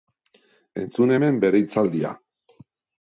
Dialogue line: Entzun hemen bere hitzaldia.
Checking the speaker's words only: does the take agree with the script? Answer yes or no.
yes